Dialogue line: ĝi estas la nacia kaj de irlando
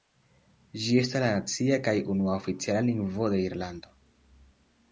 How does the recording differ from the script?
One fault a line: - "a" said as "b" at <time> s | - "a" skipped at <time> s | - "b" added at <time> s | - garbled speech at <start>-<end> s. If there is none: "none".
- "unua oficiala lingvo" added at 2.1 s